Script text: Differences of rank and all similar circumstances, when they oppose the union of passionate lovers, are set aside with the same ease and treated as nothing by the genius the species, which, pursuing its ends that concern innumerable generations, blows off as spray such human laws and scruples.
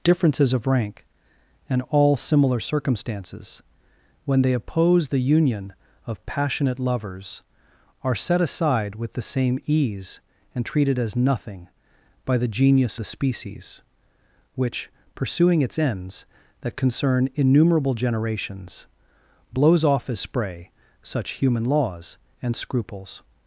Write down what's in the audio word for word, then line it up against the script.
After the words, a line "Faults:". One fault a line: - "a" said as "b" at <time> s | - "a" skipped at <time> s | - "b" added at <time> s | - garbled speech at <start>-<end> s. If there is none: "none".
Differences of rank and all similar circumstances, when they oppose the union of passionate lovers, are set aside with the same ease and treated as nothing by the genius the species, which, pursuing its ends that concern innumerable generations, blows off as spray such human laws and scruples.
Faults:
none